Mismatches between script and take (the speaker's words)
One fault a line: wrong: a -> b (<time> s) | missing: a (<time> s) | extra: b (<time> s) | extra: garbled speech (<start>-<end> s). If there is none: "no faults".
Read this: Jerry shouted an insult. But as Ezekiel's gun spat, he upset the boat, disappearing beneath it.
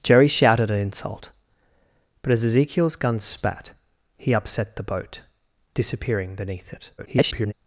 extra: garbled speech (7.0-7.5 s)